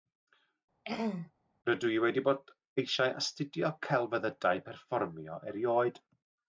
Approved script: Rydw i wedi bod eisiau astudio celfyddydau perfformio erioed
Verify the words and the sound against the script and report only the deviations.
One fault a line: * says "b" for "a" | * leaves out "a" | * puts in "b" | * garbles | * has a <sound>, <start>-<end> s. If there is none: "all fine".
* has a throat clearing, 0.8-1.3 s